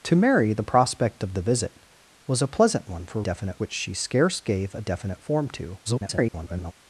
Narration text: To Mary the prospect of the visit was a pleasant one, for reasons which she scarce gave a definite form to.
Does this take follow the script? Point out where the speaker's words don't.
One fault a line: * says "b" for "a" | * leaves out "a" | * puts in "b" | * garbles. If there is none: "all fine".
* says "definite" for "reasons"
* garbles